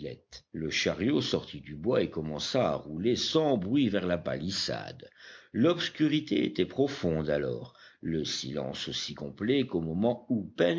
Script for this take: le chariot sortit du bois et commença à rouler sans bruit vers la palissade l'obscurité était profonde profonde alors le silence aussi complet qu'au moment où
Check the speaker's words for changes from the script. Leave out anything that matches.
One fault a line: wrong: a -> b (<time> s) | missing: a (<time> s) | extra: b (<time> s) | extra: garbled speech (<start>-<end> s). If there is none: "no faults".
missing: profonde (7.3 s)